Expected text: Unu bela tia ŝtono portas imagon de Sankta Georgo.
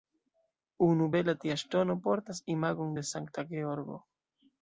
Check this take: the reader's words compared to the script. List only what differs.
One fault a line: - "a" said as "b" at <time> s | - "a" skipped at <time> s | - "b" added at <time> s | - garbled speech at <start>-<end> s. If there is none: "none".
none